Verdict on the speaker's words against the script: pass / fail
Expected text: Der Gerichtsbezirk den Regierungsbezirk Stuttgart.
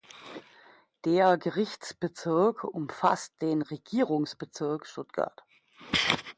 fail